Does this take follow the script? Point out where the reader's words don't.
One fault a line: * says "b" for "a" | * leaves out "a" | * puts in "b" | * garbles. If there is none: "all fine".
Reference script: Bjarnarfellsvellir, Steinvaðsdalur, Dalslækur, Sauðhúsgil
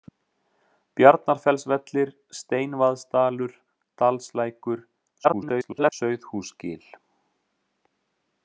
* garbles